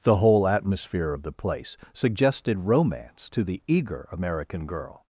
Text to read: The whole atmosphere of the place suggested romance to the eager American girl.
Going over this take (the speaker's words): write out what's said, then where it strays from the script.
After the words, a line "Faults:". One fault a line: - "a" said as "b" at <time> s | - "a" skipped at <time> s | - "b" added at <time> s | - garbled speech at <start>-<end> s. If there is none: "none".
The whole atmosphere of the place suggested romance to the eager American girl.
Faults:
none